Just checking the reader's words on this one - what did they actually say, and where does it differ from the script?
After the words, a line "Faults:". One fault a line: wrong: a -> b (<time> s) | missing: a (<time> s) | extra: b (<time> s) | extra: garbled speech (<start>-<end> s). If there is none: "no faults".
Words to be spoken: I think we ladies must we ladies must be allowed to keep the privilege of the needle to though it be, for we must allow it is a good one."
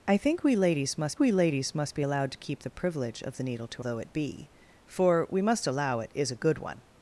I think we ladies must we ladies must be allowed to keep the privilege of the needle to though it be, for we must allow it is a good one."
Faults:
no faults